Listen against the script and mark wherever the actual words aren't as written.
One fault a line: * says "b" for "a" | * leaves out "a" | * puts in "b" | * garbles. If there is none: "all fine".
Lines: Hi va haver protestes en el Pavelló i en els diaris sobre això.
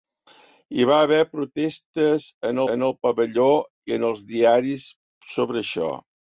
* puts in "en"